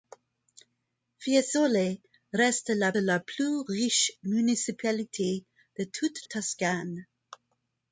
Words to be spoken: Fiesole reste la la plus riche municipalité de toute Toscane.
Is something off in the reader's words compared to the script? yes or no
no